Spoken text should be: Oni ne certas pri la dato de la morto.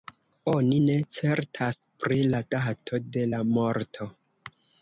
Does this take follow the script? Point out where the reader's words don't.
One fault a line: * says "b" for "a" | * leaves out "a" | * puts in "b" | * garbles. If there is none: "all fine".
all fine